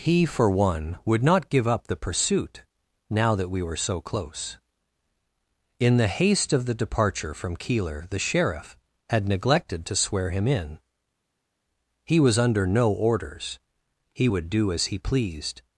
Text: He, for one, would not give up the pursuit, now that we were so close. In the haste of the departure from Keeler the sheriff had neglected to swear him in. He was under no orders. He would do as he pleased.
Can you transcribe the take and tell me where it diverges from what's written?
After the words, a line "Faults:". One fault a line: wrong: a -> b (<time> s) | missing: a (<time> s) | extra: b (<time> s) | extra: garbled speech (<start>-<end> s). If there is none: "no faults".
He, for one, would not give up the pursuit, now that we were so close. In the haste of the departure from Keeler the sheriff had neglected to swear him in. He was under no orders. He would do as he pleased.
Faults:
no faults